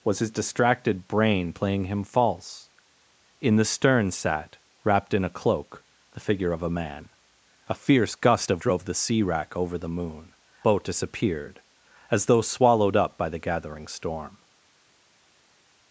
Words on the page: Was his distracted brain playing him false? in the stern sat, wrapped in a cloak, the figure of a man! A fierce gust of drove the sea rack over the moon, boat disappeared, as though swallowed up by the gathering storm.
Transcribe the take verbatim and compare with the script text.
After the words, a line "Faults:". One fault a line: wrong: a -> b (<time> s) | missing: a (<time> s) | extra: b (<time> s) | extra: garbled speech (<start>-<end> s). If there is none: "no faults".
Was his distracted brain playing him false? in the stern sat, wrapped in a cloak, the figure of a man! A fierce gust of drove the sea rack over the moon, boat disappeared, as though swallowed up by the gathering storm.
Faults:
no faults